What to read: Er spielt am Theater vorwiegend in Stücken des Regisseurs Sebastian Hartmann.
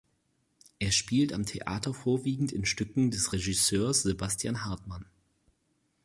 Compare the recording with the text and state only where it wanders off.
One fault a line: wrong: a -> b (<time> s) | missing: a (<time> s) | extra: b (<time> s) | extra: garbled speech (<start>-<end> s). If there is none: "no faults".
no faults